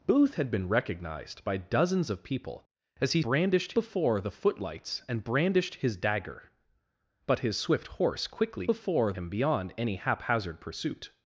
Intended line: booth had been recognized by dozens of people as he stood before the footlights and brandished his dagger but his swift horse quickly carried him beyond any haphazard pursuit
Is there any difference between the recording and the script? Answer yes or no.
yes